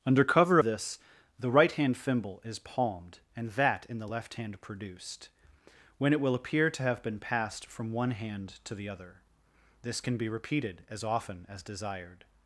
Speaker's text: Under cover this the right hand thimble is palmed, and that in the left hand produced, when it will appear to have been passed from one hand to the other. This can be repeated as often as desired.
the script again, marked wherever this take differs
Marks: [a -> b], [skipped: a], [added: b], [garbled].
Under cover this the right hand thimble is palmed, and that in the left hand produced, when it will appear to have been passed from one hand to the other. This can be repeated as often as desired.